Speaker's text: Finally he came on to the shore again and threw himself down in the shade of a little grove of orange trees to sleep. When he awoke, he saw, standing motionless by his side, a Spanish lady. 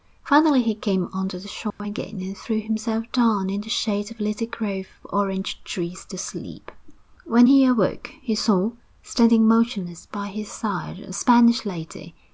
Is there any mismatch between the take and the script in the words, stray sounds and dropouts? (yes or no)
yes